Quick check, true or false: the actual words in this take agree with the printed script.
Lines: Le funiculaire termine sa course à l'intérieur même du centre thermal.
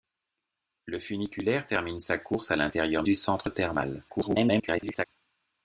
false